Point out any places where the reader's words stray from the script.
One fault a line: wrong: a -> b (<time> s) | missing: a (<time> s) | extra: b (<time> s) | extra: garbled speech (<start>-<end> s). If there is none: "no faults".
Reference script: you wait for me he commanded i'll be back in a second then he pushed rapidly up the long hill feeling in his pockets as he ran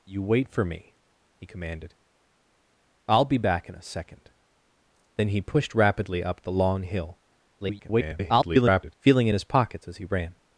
extra: garbled speech (7.6-9.0 s)